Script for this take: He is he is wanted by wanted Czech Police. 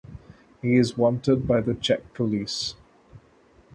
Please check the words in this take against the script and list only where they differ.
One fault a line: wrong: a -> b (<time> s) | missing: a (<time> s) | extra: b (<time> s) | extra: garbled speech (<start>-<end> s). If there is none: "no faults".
missing: he is (1.0 s)
wrong: wanted -> the (1.6 s)